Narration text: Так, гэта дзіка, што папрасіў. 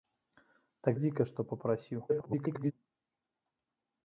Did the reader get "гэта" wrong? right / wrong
wrong